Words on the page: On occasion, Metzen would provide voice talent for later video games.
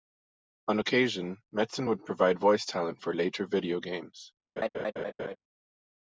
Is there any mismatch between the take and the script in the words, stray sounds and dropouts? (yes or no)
yes